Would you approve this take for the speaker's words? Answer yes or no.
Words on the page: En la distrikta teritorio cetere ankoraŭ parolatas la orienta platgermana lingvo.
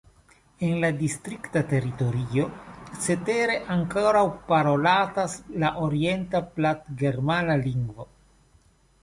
yes